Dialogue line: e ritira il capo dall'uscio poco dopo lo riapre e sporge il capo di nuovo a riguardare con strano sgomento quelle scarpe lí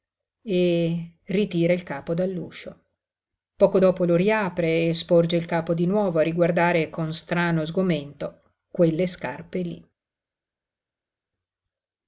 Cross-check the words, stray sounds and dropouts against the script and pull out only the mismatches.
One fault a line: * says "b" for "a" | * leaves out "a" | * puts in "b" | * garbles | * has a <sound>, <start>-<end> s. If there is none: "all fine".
all fine